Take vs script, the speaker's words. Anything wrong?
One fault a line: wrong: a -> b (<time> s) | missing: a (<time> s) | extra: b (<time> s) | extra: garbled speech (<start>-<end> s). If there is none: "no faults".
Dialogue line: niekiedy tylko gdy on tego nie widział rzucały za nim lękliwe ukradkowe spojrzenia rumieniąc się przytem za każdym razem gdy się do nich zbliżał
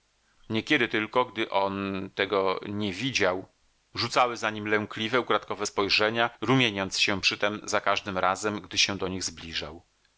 no faults